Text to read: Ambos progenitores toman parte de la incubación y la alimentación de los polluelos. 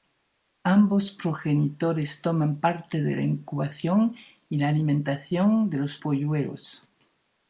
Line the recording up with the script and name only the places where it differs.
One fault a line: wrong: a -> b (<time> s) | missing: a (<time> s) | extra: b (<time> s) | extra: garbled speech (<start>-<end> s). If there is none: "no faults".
no faults